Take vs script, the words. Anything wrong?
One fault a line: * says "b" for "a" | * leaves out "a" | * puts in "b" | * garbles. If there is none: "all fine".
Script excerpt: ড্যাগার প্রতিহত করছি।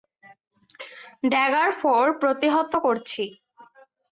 * puts in "ফোর"